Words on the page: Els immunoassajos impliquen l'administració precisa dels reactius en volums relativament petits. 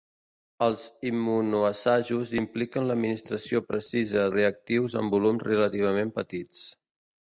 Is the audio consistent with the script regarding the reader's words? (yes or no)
no